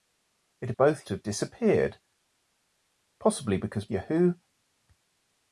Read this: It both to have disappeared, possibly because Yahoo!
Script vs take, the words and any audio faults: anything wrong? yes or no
no